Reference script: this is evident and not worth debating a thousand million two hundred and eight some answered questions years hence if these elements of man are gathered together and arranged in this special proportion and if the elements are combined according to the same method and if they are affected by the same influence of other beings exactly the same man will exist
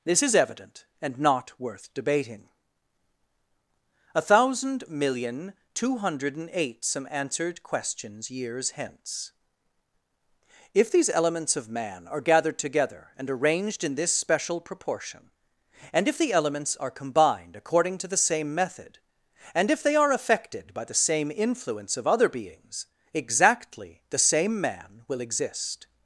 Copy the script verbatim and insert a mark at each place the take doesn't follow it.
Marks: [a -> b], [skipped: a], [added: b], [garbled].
this is evident and not worth debating a thousand million two hundred and eight some answered questions years hence if these elements of man are gathered together and arranged in this special proportion and if the elements are combined according to the same method and if they are affected by the same influence of other beings exactly the same man will exist